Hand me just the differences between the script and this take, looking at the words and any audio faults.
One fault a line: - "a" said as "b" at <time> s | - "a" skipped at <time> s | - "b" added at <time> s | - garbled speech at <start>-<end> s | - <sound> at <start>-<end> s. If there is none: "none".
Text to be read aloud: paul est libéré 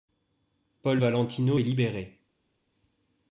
- "valentino" added at 1.0 s